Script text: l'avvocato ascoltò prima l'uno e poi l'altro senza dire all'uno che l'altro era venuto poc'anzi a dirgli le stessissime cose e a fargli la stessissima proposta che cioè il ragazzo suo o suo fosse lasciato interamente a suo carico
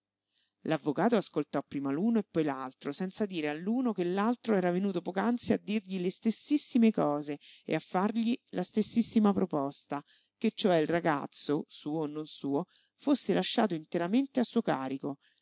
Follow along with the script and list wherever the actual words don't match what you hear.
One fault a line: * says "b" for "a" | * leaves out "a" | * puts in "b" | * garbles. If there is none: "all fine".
* puts in "non"